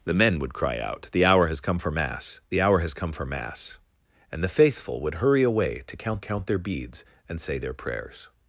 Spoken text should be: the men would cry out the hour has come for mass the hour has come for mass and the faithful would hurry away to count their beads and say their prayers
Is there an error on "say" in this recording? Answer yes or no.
no